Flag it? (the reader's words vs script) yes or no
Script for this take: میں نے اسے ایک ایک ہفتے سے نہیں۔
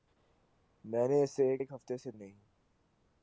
no